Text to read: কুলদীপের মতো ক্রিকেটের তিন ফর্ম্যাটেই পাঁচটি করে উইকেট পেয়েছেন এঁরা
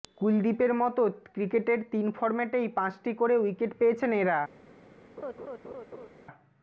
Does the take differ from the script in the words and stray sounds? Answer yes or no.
yes